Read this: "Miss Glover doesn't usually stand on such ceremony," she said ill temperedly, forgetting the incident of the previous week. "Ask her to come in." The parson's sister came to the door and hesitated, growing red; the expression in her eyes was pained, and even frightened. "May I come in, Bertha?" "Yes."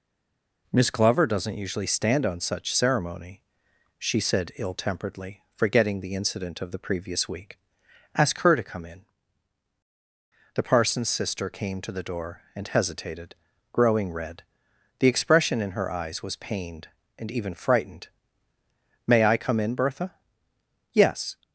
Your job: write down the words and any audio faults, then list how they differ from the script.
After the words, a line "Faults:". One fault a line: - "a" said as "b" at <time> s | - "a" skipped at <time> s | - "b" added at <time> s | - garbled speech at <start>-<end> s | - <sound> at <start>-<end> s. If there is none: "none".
"Miss Glover doesn't usually stand on such ceremony," she said ill temperedly, forgetting the incident of the previous week. "Ask her to come in." The parson's sister came to the door and hesitated, growing red; the expression in her eyes was pained, and even frightened. "May I come in, Bertha?" "Yes."
Faults:
none